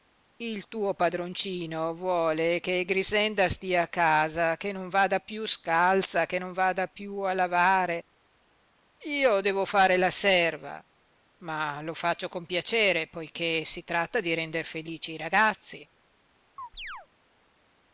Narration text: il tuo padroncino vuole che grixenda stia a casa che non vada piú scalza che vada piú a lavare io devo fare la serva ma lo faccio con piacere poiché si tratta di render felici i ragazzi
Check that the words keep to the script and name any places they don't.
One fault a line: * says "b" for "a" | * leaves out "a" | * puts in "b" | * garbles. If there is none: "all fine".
* puts in "non"